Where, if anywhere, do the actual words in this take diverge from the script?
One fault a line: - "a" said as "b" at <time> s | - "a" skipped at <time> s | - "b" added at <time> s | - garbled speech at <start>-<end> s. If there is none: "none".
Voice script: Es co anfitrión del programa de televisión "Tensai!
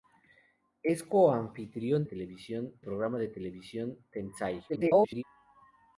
- "del" said as "televisión" at 2.0 s
- garbled speech at 4.7-5.2 s